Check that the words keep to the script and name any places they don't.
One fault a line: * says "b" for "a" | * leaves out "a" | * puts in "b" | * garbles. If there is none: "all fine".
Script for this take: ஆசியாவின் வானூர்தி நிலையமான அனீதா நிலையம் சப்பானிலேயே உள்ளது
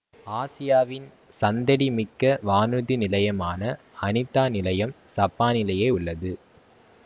* puts in "சந்தடி மிக்க"